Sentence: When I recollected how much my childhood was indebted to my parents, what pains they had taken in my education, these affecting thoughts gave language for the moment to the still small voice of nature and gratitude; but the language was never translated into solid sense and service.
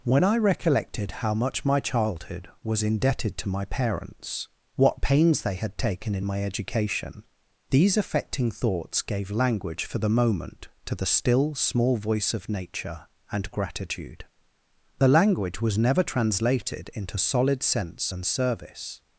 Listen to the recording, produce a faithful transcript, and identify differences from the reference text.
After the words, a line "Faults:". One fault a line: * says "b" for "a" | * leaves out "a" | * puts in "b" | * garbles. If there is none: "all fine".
When I recollected how much my childhood was indebted to my parents, what pains they had taken in my education, these affecting thoughts gave language for the moment to the still small voice of nature and gratitude; the language was never translated into solid sense and service.
Faults:
* leaves out "but"